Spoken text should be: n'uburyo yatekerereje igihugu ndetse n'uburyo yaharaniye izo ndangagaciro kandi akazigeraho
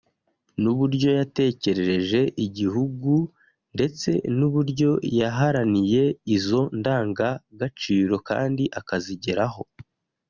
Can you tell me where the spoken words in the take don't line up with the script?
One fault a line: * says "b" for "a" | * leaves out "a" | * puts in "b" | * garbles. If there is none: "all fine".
all fine